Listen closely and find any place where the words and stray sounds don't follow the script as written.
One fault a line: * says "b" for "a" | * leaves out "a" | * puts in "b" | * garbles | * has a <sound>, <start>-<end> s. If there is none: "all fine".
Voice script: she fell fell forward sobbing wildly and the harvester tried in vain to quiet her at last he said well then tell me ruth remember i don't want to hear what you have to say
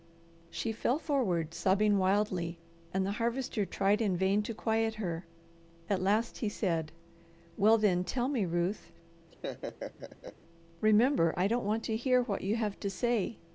* leaves out "fell"
* has a laugh, 9.3-10.4 s